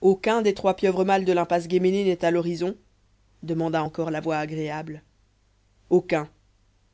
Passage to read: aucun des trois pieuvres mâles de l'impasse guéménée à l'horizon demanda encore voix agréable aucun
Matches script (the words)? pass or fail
fail